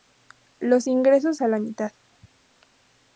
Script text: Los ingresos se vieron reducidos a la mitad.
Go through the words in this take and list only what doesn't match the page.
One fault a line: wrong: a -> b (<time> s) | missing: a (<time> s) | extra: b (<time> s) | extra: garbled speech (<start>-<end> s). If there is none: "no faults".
missing: se vieron reducidos (1.4 s)